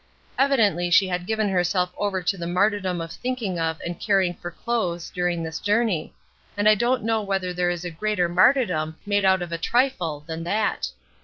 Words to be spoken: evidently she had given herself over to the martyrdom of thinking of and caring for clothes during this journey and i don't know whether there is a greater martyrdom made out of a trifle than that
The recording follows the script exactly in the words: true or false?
true